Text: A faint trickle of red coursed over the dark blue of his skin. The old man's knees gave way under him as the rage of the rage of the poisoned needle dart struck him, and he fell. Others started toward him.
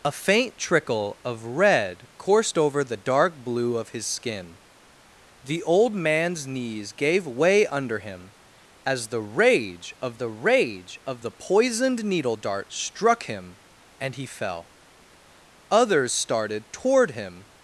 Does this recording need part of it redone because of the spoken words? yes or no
no